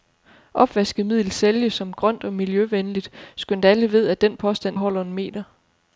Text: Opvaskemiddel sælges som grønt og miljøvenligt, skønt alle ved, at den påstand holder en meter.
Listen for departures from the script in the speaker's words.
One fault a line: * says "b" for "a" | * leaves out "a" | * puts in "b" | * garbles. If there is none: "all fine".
all fine